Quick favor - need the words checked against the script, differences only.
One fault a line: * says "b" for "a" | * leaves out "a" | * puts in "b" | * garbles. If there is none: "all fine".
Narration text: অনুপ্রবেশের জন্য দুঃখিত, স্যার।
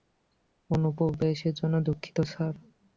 all fine